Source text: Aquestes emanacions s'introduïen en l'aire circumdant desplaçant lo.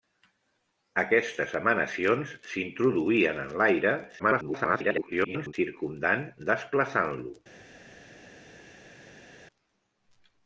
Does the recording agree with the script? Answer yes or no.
no